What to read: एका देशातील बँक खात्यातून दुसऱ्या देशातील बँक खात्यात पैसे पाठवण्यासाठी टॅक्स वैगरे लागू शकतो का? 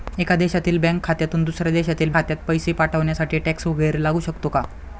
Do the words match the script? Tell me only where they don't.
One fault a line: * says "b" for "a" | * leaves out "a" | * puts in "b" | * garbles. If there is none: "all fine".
* leaves out "बँक"